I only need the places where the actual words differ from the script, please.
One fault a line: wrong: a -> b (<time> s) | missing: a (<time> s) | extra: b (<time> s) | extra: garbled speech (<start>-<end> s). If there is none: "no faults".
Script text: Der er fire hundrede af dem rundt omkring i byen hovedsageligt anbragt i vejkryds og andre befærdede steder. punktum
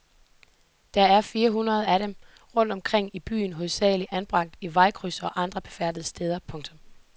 no faults